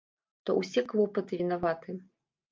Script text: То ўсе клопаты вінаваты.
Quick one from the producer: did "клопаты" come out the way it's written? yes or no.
yes